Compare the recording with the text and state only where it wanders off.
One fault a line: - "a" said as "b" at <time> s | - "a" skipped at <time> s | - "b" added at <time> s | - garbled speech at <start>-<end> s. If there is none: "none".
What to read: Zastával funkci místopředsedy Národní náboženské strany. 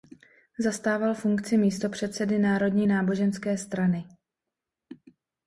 none